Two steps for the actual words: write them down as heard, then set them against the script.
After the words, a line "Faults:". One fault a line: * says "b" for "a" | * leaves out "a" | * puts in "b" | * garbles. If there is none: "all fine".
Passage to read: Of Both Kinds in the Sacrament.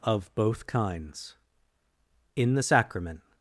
Of Both Kinds in the Sacrament.
Faults:
all fine